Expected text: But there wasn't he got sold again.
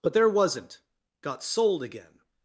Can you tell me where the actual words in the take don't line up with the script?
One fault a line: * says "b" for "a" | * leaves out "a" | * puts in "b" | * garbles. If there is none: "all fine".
* leaves out "he"